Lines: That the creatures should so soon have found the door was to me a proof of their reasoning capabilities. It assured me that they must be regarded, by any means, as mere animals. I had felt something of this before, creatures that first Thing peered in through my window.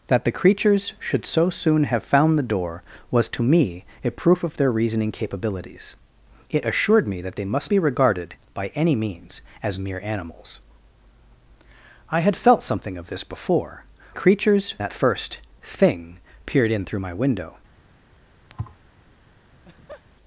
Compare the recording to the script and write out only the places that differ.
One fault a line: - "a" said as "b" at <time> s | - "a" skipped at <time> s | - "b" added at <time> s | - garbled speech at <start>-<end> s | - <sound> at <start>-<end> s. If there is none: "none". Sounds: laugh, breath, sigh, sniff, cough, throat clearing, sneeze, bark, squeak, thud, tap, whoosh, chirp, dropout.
- thud at 18.5-18.8 s
- laugh at 19.5-20.0 s